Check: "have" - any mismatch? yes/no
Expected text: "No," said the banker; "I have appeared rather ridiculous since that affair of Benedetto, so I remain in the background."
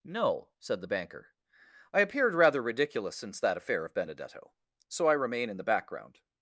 yes